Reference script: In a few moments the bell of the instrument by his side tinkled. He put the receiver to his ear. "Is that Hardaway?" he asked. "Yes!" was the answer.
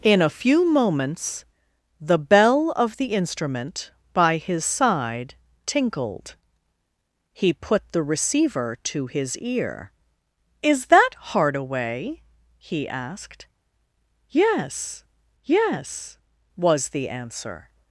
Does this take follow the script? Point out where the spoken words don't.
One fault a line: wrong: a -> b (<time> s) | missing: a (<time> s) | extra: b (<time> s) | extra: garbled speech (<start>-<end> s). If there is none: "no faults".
extra: yes (15.4 s)